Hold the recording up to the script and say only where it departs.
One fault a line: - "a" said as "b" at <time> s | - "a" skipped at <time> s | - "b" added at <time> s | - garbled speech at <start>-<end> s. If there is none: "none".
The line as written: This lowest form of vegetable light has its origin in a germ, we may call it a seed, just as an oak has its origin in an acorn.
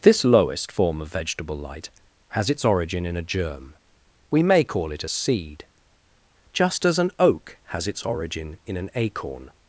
none